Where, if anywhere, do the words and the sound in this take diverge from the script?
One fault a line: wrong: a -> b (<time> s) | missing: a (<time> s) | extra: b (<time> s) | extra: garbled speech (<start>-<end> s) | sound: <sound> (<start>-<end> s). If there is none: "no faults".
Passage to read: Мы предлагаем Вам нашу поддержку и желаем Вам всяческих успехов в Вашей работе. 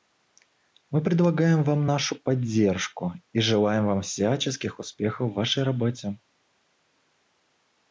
no faults